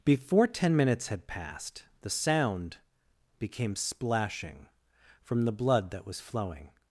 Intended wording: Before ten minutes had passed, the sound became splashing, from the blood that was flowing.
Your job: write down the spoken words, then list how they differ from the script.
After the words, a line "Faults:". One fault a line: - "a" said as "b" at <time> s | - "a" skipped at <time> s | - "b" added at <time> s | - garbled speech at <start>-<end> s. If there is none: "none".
Before ten minutes had passed, the sound became splashing, from the blood that was flowing.
Faults:
none